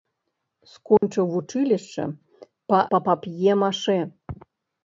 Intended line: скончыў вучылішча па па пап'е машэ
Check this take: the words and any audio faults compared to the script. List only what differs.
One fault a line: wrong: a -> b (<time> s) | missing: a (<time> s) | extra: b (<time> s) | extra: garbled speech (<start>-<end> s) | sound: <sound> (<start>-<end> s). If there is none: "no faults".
sound: dropout (1.0-1.0 s)